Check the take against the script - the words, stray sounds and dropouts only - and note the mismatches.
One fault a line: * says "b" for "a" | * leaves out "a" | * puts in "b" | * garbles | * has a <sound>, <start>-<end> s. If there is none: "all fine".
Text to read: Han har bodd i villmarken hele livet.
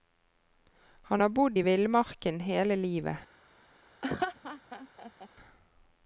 * has a laugh, 4.0-5.3 s